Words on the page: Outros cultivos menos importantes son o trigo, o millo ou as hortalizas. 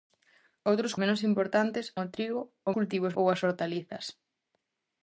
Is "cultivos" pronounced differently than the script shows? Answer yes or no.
yes